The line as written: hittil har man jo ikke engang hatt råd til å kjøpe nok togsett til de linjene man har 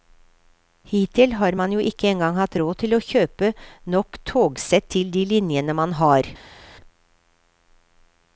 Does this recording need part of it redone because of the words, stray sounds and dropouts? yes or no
no